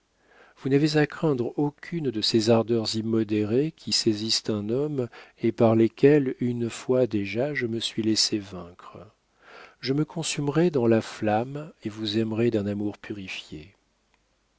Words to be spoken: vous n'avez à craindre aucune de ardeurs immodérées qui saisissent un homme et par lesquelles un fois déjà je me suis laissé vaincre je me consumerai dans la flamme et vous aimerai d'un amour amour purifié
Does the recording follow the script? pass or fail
fail